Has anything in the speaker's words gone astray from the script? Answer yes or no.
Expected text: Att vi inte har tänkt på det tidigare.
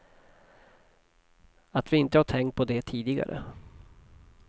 no